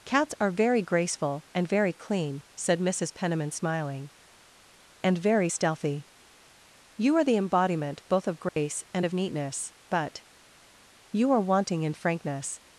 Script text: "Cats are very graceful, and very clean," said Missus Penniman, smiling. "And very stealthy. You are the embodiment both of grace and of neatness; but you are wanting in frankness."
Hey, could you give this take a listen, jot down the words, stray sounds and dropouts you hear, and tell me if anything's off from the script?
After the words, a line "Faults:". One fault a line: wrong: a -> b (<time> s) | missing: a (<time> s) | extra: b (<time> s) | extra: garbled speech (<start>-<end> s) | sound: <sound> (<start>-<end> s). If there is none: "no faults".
"Cats are very graceful, and very clean," said Missus Penniman, smiling. "And very stealthy. You are the embodiment both of grace and of neatness; but you are wanting in frankness."
Faults:
sound: dropout (8.5-8.6 s)